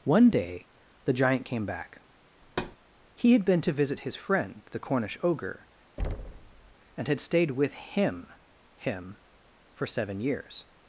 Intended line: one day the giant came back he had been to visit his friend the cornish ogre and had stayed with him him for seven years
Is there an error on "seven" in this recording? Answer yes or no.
no